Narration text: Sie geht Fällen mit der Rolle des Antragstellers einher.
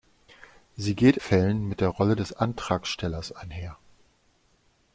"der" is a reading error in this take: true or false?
false